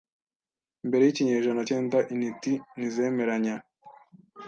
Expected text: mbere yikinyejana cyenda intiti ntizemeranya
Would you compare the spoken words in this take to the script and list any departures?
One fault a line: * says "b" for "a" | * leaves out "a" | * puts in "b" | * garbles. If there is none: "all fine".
all fine